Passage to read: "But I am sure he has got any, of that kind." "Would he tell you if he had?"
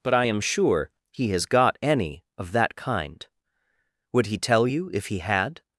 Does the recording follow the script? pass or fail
pass